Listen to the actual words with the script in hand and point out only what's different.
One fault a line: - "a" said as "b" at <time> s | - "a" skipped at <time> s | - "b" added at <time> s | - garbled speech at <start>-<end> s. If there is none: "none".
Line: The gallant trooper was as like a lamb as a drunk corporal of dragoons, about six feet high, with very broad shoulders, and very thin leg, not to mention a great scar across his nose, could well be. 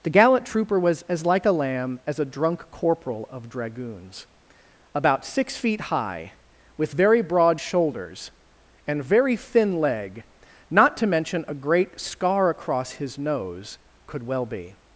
none